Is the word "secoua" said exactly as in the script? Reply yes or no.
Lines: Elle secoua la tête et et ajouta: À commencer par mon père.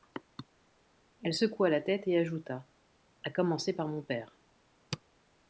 yes